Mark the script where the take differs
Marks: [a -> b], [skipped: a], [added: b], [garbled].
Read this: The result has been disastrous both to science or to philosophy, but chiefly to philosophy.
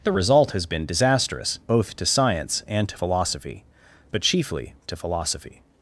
The result has been disastrous both to science [or -> and] to philosophy, but chiefly to philosophy.